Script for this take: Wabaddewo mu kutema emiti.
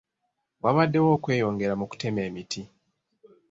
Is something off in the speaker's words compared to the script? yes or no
yes